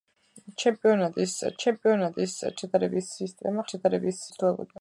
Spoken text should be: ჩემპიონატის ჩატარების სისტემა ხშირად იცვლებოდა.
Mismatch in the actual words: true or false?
true